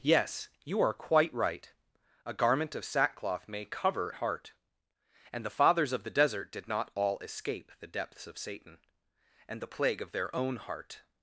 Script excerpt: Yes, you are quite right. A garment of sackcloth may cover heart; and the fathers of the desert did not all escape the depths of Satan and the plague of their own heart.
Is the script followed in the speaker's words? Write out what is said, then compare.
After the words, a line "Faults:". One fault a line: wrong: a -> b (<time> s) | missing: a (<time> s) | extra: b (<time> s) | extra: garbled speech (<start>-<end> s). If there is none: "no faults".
Yes, you are quite right. A garment of sackcloth may cover heart; and the fathers of the desert did not all escape the depths of Satan and the plague of their own heart.
Faults:
no faults